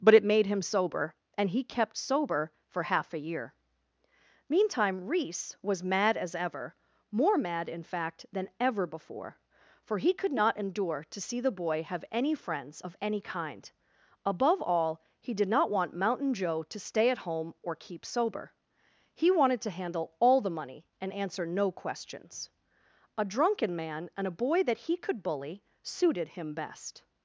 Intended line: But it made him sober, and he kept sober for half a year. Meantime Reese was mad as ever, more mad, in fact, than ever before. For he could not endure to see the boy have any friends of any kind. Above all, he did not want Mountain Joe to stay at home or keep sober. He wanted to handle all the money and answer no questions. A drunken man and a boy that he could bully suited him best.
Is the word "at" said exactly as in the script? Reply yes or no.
yes